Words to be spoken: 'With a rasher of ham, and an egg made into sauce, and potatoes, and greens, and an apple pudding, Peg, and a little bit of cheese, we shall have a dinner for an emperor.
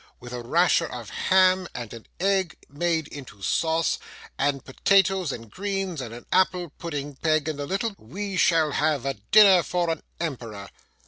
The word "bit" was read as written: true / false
false